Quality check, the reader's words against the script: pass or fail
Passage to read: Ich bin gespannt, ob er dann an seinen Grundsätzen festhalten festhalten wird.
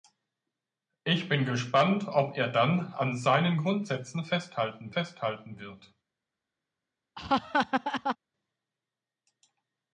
pass